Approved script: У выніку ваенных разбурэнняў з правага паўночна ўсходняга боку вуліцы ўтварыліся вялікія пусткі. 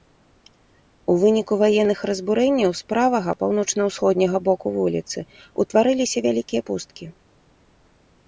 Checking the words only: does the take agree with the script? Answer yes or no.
yes